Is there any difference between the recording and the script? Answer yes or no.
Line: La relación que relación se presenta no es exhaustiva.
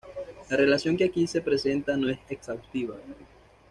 yes